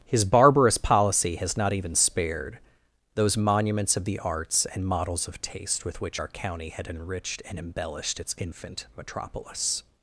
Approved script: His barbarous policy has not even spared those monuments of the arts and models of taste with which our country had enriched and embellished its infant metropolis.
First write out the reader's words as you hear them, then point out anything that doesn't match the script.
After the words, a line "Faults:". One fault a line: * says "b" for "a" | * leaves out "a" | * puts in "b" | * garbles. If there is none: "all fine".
His barbarous policy has not even spared those monuments of the arts and models of taste with which our county had enriched and embellished its infant metropolis.
Faults:
* says "county" for "country"